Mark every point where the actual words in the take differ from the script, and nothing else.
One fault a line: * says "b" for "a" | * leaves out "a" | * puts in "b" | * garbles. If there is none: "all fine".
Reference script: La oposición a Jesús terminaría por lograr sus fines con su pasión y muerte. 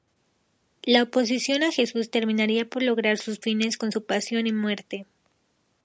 all fine